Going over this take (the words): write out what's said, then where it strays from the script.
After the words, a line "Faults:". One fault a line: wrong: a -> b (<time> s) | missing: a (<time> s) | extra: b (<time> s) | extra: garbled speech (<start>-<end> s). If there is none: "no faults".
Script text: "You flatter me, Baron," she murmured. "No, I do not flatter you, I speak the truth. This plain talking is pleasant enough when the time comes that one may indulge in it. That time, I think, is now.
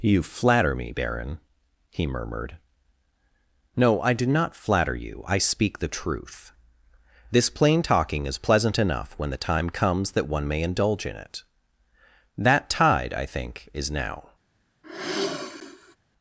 "You flatter me, Baron," he murmured. "No, I do not flatter you, I speak the truth. This plain talking is pleasant enough when the time comes that one may indulge in it. That tide, I think, is now.
Faults:
wrong: she -> he (1.9 s)
wrong: time -> tide (12.7 s)